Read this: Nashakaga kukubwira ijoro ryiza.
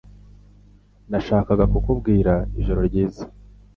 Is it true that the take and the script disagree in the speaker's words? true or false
false